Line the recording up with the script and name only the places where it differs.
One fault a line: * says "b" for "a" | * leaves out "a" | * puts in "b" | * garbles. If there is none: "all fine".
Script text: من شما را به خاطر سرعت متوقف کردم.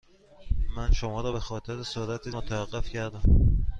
all fine